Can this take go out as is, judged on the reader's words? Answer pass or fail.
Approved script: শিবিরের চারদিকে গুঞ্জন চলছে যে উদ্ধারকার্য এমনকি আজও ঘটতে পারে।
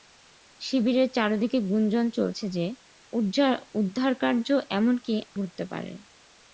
fail